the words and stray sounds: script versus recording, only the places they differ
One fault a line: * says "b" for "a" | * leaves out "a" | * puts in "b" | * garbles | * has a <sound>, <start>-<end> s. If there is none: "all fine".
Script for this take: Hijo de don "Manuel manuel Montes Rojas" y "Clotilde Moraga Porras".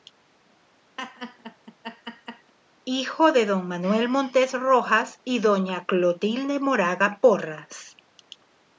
* has a laugh, 1.0-2.5 s
* leaves out "manuel"
* puts in "doña"